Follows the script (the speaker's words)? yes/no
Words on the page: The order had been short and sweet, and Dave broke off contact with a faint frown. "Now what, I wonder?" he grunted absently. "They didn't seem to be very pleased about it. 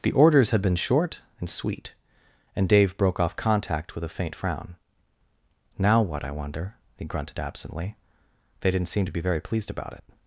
no